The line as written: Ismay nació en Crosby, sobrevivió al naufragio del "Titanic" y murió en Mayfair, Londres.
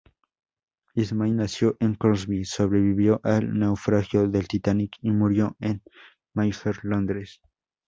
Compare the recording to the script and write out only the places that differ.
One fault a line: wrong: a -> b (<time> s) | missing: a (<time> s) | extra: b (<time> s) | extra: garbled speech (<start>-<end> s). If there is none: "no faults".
no faults